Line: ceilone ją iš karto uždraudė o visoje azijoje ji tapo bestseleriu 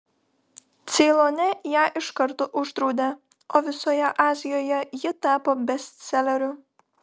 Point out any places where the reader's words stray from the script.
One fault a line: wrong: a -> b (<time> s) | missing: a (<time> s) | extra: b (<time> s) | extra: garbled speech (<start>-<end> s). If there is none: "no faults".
no faults